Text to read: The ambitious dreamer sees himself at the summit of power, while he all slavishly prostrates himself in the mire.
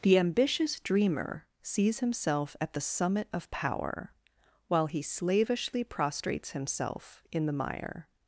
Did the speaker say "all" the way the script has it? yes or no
no